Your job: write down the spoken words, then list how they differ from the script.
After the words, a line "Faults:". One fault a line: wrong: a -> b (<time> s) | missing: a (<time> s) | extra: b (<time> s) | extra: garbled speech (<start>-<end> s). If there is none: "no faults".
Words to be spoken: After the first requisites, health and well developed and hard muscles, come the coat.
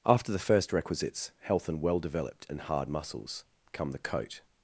After the first requisites, health and well developed and hard muscles, come the coat.
Faults:
no faults